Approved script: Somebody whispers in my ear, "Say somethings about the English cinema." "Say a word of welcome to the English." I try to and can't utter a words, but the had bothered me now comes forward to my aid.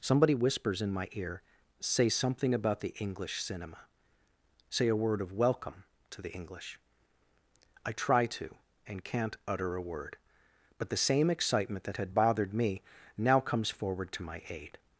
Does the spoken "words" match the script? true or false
false